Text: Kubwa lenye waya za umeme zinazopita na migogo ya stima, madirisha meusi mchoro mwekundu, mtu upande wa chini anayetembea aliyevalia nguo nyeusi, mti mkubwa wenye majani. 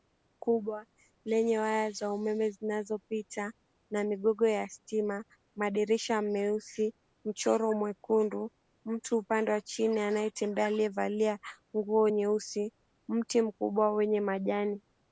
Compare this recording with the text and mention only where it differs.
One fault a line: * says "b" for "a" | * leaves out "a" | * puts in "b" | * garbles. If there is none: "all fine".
all fine